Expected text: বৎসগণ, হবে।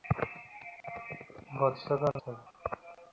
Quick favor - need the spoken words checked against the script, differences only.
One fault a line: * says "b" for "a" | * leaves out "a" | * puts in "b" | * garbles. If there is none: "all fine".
all fine